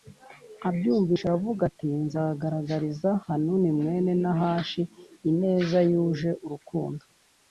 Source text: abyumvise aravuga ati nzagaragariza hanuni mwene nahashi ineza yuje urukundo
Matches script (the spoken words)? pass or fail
pass